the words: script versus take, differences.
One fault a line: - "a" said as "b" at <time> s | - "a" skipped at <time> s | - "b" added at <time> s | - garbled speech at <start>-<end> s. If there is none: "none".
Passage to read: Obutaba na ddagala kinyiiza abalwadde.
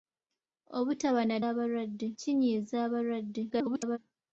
- "ddagala" said as "abalwadde" at 1.5 s
- garbled speech at 3.5-4.0 s